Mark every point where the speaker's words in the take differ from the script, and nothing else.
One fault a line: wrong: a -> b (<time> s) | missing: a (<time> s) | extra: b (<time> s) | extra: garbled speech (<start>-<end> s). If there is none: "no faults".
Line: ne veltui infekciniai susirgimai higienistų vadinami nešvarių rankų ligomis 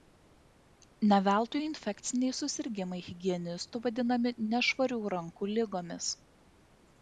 no faults